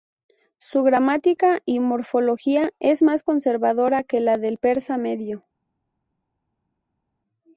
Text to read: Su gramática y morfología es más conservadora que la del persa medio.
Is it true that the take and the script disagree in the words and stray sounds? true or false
false